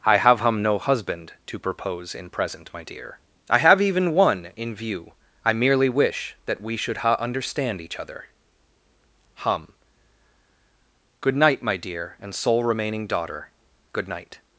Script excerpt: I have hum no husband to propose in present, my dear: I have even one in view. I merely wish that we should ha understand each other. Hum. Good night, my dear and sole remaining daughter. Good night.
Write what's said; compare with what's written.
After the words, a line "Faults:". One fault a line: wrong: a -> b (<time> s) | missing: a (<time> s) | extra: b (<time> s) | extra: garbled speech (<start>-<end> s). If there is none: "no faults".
I have hum no husband to propose in present, my dear: I have even one in view. I merely wish that we should ha understand each other. Hum. Good night, my dear and sole remaining daughter. Good night.
Faults:
no faults